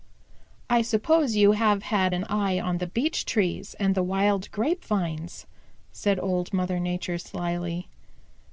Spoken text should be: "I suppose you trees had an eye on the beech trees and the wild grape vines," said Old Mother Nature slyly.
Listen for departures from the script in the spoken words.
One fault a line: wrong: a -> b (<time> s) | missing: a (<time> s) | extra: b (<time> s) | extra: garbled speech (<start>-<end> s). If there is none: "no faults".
wrong: trees -> have (1.5 s)